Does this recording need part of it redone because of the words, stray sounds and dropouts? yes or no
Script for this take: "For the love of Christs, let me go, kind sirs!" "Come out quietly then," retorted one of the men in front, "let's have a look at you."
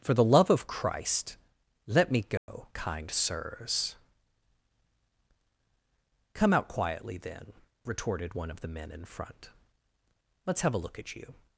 yes